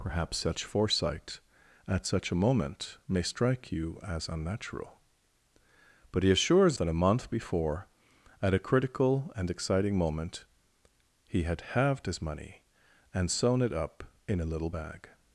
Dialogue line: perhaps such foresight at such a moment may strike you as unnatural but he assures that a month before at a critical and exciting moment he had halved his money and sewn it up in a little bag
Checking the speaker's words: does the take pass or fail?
pass